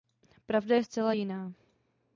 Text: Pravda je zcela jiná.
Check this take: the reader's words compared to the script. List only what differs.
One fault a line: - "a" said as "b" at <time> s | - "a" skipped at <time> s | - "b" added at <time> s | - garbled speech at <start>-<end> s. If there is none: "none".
none